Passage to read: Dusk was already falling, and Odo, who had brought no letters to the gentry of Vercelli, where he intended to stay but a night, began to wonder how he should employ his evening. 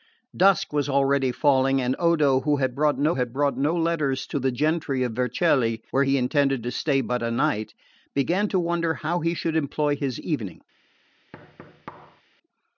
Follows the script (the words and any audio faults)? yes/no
no